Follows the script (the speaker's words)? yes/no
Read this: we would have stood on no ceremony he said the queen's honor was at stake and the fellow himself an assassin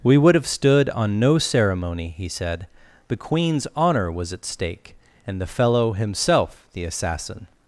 no